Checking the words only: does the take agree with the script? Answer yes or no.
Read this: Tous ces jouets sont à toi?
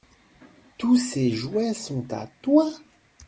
yes